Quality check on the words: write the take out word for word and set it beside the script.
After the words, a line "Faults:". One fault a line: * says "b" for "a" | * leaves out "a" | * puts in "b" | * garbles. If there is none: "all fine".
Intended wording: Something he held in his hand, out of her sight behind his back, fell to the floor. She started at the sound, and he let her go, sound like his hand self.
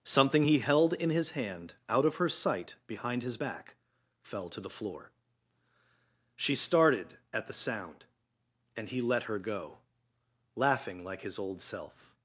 Something he held in his hand, out of her sight behind his back, fell to the floor. She started at the sound, and he let her go, laughing like his old self.
Faults:
* says "laughing" for "sound"
* says "old" for "hand"